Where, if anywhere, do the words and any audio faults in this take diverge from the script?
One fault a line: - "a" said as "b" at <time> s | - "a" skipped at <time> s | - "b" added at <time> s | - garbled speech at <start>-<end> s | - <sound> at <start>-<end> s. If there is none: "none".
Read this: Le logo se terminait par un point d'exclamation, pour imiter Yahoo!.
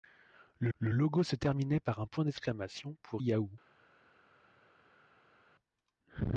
- "le" added at 0.8 s
- "imiter" skipped at 3.2 s